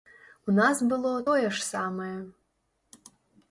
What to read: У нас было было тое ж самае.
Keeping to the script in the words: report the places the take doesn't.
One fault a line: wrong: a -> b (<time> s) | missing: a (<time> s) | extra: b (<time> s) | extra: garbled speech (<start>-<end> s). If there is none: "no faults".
missing: было (1.1 s)